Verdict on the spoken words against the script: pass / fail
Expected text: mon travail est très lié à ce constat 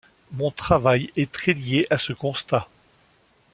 pass